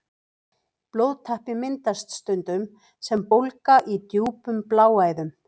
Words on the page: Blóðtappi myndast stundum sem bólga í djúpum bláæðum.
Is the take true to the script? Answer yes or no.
yes